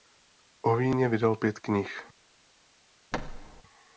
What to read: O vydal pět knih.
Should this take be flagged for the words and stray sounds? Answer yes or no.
yes